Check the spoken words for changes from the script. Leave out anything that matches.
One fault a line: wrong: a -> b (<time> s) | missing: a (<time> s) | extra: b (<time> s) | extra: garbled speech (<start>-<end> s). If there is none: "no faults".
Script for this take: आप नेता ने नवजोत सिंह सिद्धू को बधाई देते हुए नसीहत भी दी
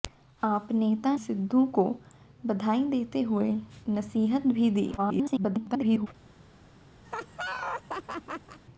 missing: ने नवजोत सिंह (1.1 s)
extra: garbled speech (5.0-6.1 s)